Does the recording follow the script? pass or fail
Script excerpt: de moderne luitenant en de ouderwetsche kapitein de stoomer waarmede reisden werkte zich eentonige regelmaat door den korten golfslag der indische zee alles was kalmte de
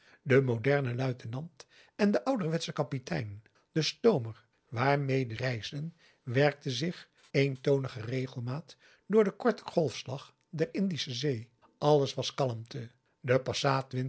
pass